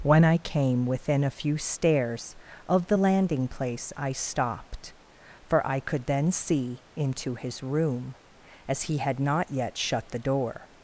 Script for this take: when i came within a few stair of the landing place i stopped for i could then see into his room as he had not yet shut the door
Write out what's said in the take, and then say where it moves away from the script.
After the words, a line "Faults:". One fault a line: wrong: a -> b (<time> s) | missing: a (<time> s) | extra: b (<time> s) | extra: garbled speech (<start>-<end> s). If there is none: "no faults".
when i came within a few stairs of the landing place i stopped for i could then see into his room as he had not yet shut the door
Faults:
wrong: stair -> stairs (1.6 s)